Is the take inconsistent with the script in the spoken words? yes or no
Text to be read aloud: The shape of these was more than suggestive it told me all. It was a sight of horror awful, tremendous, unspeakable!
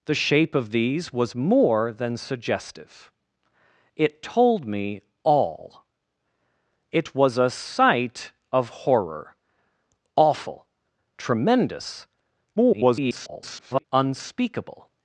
yes